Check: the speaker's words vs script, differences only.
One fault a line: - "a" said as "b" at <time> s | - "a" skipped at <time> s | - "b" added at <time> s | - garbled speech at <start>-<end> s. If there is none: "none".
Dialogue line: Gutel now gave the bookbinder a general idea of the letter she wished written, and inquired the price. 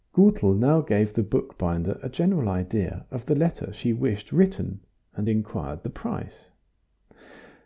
none